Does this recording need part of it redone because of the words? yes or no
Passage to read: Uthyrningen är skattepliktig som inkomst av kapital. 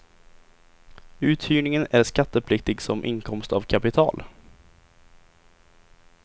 no